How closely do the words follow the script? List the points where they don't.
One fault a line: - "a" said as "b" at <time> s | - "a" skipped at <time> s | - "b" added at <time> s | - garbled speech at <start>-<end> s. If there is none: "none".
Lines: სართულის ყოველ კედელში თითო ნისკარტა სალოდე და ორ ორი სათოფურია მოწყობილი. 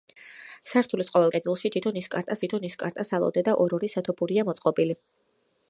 - "თითო ნისკარტა" added at 2.4 s